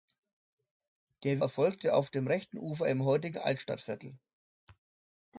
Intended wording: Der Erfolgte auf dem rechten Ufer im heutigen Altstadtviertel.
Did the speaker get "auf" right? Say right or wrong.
right